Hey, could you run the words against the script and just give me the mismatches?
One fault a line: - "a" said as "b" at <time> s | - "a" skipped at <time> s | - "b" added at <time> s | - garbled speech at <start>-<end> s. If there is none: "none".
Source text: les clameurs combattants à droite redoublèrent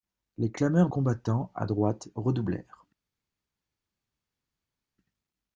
none